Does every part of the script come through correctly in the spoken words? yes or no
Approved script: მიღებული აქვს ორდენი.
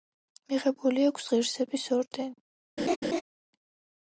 no